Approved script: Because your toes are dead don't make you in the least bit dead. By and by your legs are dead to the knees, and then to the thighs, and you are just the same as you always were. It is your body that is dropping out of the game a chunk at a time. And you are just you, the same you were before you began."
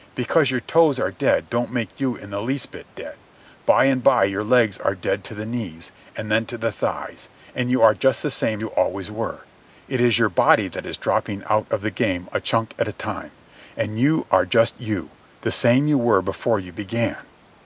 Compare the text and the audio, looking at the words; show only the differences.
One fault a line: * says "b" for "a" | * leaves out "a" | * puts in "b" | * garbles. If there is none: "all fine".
* leaves out "as"